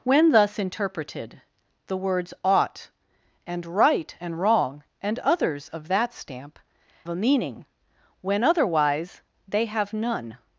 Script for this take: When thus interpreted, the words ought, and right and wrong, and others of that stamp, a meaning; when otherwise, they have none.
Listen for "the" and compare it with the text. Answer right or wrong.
right